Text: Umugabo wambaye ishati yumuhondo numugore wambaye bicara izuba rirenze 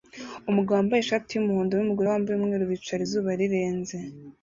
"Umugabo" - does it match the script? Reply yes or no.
yes